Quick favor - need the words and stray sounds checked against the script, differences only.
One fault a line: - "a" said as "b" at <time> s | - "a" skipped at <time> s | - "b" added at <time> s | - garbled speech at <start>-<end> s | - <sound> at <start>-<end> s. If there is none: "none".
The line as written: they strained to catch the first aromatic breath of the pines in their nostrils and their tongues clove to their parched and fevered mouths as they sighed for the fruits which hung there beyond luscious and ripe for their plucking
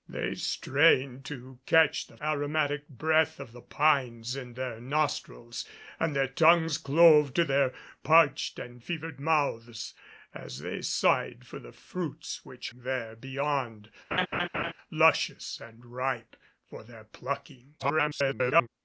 - "first" skipped at 2.2 s
- "hung" skipped at 12.7 s
- laugh at 14.1-14.7 s
- garbled speech at 17.8-18.7 s